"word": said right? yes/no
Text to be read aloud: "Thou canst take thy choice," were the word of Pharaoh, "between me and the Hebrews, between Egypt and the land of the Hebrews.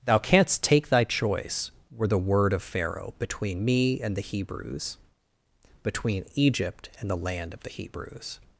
yes